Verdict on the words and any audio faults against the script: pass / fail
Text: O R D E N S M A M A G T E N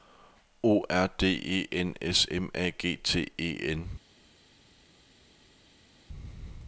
fail